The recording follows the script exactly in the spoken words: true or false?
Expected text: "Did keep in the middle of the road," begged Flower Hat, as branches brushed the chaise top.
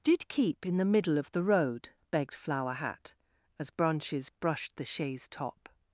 true